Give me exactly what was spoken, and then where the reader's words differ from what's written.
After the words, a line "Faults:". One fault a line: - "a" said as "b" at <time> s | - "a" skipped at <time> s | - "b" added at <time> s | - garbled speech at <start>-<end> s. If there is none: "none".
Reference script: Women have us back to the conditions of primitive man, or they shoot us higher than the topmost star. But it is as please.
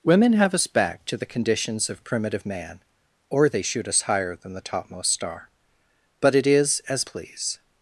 Women have us back to the conditions of primitive man, or they shoot us higher than the topmost star. But it is as please.
Faults:
none